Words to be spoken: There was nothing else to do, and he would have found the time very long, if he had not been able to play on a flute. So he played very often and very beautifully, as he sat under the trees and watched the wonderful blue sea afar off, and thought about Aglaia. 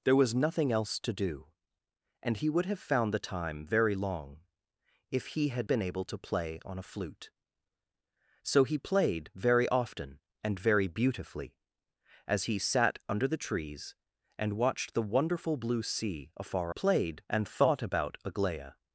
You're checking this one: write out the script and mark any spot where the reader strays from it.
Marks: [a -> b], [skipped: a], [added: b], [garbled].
There was nothing else to do, and he would have found the time very long, if he had [skipped: not] been able to play on a flute. So he played very often and very beautifully, as he sat under the trees and watched the wonderful blue sea afar [off, -> played] and thought about Aglaia.